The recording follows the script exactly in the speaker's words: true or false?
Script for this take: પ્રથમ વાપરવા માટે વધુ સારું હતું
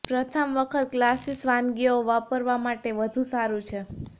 false